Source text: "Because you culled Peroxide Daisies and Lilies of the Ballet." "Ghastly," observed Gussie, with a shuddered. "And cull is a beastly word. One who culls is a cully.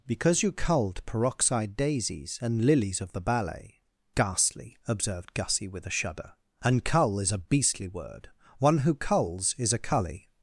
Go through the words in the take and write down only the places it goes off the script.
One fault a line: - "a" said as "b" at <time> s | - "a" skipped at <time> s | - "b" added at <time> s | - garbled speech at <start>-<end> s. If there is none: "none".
- "shuddered" said as "shudder" at 6.0 s